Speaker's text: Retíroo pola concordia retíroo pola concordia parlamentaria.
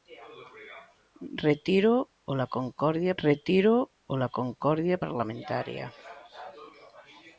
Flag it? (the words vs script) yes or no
no